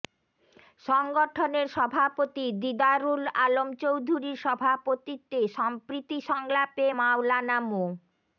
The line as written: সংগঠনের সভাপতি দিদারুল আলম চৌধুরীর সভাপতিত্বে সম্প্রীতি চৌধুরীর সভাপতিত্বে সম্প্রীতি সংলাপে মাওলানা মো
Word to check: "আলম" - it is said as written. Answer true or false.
true